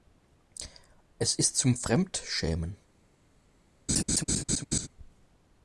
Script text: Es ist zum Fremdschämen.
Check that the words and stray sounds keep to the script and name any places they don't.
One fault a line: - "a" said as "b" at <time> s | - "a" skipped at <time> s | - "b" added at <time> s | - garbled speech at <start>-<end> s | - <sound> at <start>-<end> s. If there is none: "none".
- laugh at 3.9-4.9 s